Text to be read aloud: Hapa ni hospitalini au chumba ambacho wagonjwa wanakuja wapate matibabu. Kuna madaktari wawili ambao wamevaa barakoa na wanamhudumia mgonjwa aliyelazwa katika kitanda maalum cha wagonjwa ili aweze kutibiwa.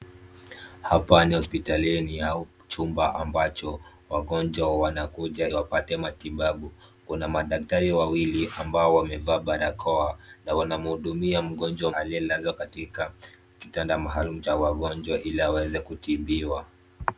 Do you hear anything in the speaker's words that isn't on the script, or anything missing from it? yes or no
no